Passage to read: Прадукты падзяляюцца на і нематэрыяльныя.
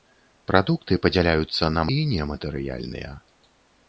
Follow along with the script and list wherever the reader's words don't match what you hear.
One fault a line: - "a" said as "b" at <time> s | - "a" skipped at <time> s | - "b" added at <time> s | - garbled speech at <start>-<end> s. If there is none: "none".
none